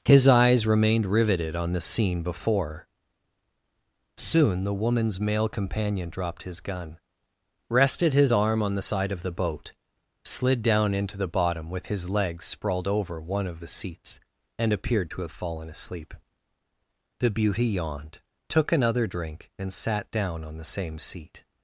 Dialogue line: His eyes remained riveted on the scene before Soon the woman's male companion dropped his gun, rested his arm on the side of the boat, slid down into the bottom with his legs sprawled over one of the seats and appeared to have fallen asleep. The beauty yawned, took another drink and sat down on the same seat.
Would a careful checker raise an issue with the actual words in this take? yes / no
no